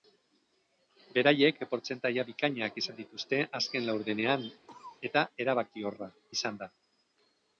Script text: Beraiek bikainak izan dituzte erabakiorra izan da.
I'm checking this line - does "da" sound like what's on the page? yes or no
yes